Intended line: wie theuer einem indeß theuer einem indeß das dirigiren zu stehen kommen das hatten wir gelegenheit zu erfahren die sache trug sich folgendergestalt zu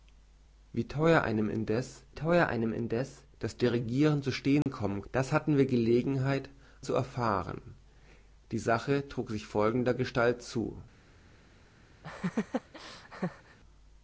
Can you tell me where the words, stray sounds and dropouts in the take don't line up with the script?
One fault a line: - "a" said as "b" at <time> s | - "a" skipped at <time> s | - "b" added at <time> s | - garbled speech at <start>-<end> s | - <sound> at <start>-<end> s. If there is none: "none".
- dropout at 4.6-4.7 s
- laugh at 12.0-13.6 s